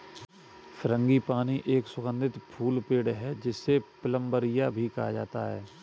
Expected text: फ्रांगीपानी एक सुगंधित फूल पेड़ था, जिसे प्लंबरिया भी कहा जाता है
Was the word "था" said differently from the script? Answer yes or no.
yes